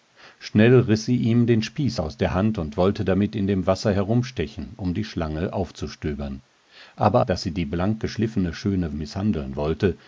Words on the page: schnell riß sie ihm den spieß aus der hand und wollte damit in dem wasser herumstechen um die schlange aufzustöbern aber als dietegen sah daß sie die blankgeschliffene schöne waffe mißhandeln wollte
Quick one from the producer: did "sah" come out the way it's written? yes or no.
no